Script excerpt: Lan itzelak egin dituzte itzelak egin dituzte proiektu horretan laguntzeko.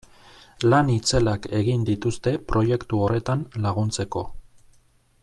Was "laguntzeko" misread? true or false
false